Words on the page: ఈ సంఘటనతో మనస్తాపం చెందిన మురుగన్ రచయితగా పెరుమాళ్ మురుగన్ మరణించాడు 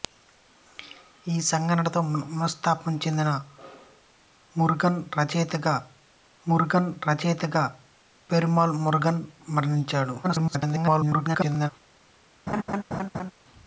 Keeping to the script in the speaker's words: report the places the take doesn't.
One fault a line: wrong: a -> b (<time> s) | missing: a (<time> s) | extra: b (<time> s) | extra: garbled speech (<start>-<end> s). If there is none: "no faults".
extra: మురుగన్ రచయితగా (6.5 s)
extra: garbled speech (10.2-11.7 s)